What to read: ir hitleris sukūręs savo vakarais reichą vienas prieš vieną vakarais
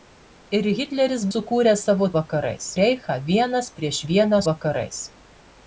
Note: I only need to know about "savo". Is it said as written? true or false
true